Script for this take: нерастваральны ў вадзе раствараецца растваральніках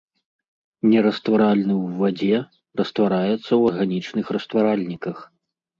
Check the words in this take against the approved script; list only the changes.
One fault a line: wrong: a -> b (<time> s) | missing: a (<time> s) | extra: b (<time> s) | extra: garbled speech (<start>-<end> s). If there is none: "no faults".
extra: ў арганічных (3.5 s)